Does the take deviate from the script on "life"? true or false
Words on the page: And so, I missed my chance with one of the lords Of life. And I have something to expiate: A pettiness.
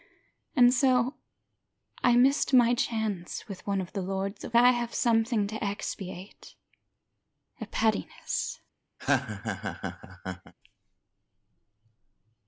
true